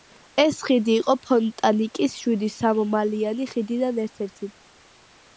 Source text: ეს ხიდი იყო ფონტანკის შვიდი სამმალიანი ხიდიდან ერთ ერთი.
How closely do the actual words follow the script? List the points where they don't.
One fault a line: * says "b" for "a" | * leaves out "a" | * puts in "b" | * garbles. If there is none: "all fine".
all fine